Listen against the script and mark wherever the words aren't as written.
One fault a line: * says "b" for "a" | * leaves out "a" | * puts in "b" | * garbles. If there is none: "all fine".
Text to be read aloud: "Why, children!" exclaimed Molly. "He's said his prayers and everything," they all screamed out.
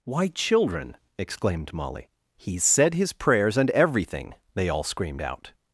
all fine